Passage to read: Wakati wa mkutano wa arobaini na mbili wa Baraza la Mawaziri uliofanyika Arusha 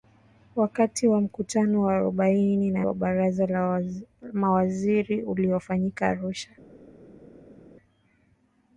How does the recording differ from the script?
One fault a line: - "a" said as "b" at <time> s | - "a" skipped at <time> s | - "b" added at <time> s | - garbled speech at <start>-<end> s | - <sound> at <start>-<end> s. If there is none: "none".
- "mbili" skipped at 2.9 s